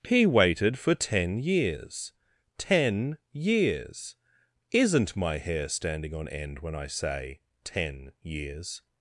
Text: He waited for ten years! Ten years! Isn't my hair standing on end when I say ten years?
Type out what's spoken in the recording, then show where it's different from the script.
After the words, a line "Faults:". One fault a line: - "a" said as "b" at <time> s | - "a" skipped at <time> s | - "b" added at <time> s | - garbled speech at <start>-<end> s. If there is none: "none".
He waited for ten years! Ten years! Isn't my hair standing on end when I say ten years?
Faults:
none